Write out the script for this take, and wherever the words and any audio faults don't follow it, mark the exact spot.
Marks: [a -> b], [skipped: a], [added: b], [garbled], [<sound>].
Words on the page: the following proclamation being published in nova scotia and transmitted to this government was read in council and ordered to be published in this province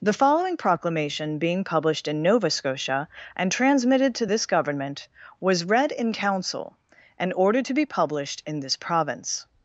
the following proclamation being published in nova scotia and transmitted to this government was read in council and ordered to be published in this province